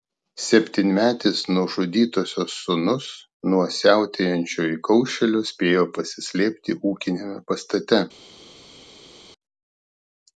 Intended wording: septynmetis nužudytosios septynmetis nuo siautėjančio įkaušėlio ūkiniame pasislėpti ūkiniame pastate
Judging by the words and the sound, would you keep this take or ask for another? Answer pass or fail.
fail